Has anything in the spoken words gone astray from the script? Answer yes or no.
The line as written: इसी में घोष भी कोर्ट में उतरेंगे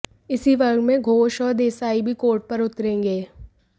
yes